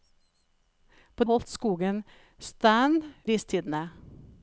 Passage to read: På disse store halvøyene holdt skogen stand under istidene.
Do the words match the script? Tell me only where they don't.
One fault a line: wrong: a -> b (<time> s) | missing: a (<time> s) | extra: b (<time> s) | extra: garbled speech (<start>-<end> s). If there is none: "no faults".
missing: disse store halvøyene (1.3 s)
missing: under (3.0 s)